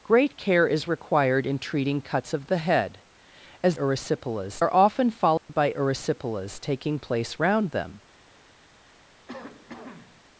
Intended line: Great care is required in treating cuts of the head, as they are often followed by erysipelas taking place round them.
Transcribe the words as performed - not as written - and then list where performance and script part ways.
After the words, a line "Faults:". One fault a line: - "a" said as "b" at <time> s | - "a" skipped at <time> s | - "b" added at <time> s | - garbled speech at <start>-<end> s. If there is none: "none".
Great care is required in treating cuts of the head, as erysipelas are often followed by erysipelas taking place round them.
Faults:
- "they" said as "erysipelas" at 3.7 s